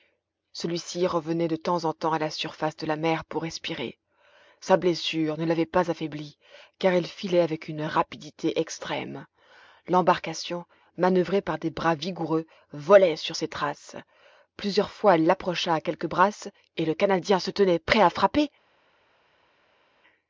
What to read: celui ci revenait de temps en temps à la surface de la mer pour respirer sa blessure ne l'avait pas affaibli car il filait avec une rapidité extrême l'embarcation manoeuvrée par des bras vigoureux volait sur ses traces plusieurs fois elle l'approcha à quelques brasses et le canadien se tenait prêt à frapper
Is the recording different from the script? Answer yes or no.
no